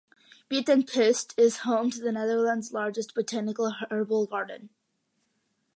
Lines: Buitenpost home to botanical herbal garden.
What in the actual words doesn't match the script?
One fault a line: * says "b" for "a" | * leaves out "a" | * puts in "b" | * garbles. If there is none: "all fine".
* puts in "is"
* puts in "the Netherlands largest"